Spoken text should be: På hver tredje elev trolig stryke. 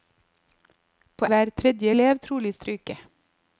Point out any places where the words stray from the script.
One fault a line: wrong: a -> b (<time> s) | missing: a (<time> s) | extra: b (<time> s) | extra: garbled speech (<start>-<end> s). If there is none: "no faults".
no faults